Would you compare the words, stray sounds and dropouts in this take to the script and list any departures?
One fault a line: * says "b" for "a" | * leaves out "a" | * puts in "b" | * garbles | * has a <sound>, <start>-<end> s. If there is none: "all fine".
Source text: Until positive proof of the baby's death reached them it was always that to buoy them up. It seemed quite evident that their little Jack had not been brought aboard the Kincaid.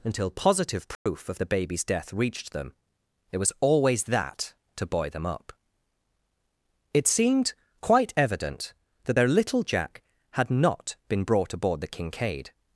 * has a dropout, 0.9-1.1 s